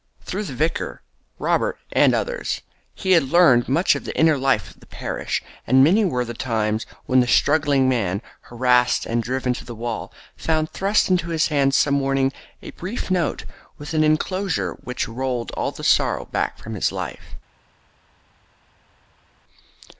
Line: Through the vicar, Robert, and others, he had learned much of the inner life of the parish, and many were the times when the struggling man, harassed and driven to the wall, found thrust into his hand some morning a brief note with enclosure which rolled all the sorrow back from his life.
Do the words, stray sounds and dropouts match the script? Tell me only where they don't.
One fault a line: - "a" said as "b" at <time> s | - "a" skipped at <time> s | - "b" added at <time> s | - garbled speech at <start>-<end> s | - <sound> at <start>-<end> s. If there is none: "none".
- "an" added at 13.9 s